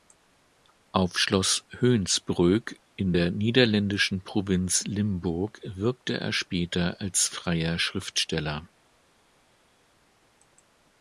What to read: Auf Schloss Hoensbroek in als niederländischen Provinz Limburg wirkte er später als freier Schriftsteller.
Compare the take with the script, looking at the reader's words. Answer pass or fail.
fail